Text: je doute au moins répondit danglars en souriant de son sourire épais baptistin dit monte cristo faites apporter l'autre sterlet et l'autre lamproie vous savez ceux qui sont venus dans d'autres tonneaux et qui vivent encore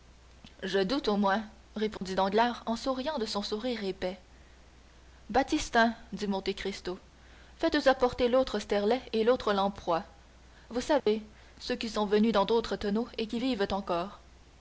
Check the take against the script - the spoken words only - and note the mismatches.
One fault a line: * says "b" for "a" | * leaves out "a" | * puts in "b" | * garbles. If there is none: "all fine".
all fine